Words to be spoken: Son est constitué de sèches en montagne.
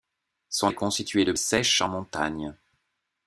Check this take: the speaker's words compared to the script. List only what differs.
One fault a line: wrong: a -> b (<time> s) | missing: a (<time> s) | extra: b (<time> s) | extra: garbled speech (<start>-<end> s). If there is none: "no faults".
no faults